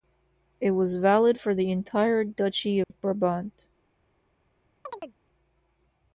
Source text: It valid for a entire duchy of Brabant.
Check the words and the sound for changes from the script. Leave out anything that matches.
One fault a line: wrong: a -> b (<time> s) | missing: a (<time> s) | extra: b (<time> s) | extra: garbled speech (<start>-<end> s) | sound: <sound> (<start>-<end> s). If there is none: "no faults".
extra: was (0.7 s)
wrong: a -> the (1.5 s)
sound: dropout (2.8-2.9 s)
sound: chirp (4.9-5.2 s)